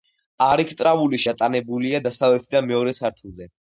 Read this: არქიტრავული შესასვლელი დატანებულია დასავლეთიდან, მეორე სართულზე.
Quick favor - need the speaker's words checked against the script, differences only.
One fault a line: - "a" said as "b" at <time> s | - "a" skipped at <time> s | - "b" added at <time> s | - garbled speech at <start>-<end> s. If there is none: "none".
- "შესასვლელი" skipped at 1.2 s